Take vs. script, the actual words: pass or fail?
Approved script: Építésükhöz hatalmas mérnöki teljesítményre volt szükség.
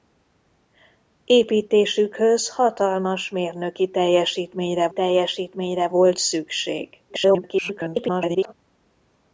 fail